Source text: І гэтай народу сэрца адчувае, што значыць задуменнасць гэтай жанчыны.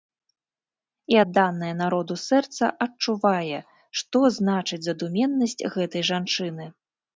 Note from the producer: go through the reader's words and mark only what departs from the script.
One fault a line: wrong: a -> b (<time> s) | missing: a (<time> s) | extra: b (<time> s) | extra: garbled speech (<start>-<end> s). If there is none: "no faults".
wrong: гэтай -> адданае (1.2 s)